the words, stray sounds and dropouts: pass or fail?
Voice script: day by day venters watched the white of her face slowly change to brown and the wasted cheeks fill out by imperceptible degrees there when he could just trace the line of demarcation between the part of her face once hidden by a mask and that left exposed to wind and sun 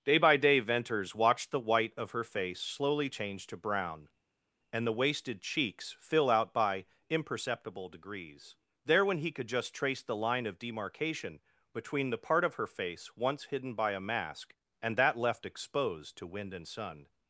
pass